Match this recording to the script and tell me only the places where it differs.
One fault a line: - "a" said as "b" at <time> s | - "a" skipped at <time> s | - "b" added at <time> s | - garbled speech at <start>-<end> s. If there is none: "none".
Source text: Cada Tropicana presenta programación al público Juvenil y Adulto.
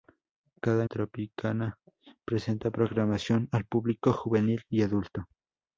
none